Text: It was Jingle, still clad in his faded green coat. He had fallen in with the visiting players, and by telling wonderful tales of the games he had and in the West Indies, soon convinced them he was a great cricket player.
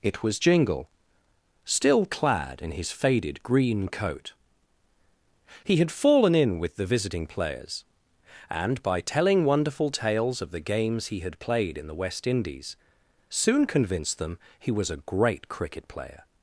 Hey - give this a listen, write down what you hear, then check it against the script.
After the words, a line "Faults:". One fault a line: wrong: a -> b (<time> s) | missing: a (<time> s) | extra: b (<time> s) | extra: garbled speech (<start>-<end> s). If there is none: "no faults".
It was Jingle, still clad in his faded green coat. He had fallen in with the visiting players, and by telling wonderful tales of the games he had played in the West Indies, soon convinced them he was a great cricket player.
Faults:
wrong: and -> played (11.4 s)